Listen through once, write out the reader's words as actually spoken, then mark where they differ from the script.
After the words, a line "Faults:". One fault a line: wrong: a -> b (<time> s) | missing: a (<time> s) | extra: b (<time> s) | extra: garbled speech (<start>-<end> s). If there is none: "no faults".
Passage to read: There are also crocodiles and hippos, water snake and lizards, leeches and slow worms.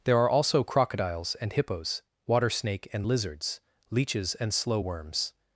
There are also crocodiles and hippos, water snake and lizards, leeches and slow worms.
Faults:
no faults